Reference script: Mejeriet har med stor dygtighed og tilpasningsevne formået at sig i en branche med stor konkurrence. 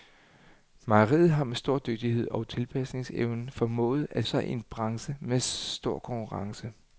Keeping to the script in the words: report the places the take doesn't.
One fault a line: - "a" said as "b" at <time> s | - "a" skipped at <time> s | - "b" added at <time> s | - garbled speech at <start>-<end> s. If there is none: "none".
none